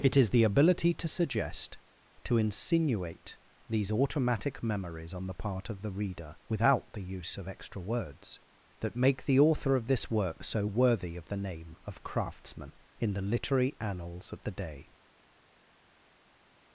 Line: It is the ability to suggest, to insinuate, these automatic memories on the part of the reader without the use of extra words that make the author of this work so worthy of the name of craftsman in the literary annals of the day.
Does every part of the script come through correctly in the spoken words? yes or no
yes